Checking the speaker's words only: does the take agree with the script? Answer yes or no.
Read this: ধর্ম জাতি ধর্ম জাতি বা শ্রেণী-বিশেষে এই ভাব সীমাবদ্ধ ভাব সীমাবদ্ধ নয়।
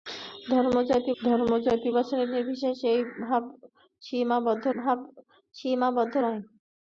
yes